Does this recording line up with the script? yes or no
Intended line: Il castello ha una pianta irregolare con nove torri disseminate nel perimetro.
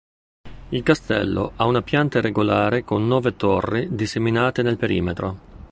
yes